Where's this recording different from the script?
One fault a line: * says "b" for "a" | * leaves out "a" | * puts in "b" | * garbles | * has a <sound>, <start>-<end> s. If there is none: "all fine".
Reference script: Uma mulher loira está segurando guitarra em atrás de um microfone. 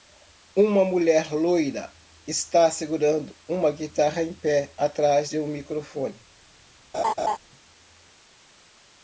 * puts in "uma"
* puts in "pé"
* has a laugh, 6.9-7.4 s